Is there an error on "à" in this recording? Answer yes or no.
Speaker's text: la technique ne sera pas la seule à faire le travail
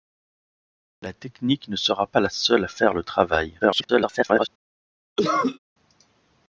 no